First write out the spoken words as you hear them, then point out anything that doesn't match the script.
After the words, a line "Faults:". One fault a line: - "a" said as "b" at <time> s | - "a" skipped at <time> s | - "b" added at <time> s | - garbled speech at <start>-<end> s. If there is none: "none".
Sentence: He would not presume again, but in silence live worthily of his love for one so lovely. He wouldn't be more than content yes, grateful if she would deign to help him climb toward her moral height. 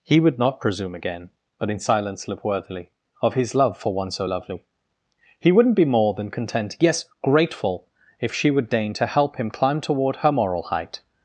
He would not presume again, but in silence live worthily of his love for one so lovely. He wouldn't be more than content yes, grateful if she would deign to help him climb toward her moral height.
Faults:
none